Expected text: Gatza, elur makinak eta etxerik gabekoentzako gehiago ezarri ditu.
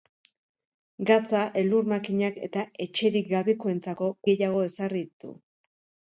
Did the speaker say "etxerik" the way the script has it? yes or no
yes